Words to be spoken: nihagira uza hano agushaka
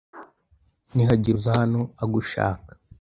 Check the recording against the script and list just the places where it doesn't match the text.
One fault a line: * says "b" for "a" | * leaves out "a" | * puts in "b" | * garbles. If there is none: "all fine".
all fine